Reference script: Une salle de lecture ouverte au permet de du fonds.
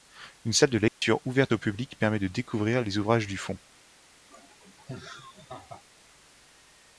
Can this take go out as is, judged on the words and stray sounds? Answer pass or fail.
fail